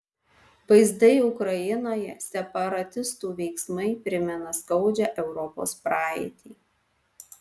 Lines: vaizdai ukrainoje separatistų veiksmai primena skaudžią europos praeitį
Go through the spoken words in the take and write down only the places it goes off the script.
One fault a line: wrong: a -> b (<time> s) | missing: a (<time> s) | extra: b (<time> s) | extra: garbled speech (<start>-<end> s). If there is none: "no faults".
no faults